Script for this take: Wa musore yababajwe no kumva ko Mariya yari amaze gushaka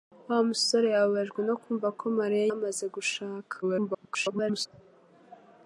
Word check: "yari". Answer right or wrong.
wrong